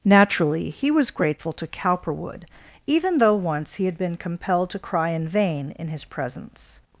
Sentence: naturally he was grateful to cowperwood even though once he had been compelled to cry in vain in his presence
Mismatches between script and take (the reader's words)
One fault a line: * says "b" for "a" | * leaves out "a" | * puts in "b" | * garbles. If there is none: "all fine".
all fine